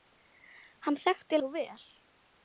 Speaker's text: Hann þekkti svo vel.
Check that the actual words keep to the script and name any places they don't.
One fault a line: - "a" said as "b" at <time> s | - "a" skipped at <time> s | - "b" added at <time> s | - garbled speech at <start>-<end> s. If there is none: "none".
none